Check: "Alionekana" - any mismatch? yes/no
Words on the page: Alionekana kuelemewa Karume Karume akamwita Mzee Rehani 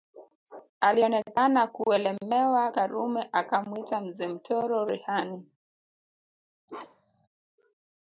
no